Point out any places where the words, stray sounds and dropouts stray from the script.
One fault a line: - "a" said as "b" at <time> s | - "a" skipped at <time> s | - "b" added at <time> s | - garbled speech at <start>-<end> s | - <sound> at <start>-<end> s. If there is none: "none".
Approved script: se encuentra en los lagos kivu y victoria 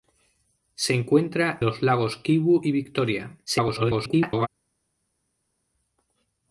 - "en" skipped at 1.6 s
- garbled speech at 3.5-4.5 s